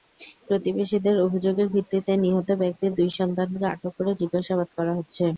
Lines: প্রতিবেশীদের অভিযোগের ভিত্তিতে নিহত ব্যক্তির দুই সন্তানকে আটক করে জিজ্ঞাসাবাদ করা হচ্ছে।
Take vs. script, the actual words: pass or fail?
pass